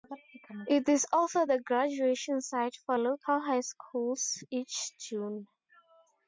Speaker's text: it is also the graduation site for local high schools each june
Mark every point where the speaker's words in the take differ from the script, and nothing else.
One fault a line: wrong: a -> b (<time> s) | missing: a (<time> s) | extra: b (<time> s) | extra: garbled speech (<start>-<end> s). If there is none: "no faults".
no faults